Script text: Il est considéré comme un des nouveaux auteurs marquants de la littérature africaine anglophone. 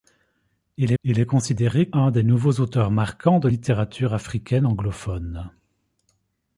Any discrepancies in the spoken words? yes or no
yes